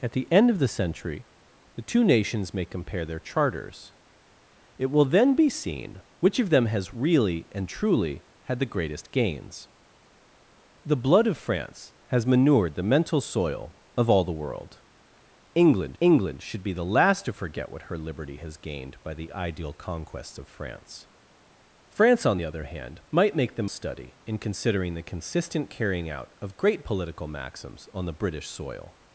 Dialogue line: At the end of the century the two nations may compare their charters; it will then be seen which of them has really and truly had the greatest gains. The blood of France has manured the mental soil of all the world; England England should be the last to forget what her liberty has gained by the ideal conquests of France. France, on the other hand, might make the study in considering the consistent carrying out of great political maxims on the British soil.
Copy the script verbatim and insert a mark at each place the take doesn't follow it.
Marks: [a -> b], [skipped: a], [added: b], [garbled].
At the end of the century the two nations may compare their charters; it will then be seen which of them has really and truly had the greatest gains. The blood of France has manured the mental soil of all the world; England England should be the last to forget what her liberty has gained by the ideal conquests of France. France, on the other hand, might make the study in considering the consistent carrying out of great political maxims on the British soil.